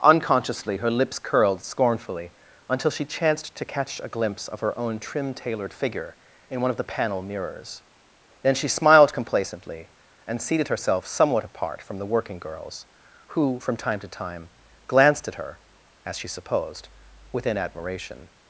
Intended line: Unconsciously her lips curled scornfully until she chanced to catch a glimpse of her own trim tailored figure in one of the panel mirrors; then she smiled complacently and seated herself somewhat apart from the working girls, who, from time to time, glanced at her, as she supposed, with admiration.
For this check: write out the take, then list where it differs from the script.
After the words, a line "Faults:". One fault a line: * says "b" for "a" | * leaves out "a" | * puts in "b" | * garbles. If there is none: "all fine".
Unconsciously her lips curled scornfully until she chanced to catch a glimpse of her own trim tailored figure in one of the panel mirrors; then she smiled complacently and seated herself somewhat apart from the working girls, who, from time to time, glanced at her, as she supposed, within admiration.
Faults:
* says "within" for "with"